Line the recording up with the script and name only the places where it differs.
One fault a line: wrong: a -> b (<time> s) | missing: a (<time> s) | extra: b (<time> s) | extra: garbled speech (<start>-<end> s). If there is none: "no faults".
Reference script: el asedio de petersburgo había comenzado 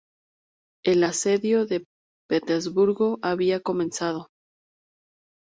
no faults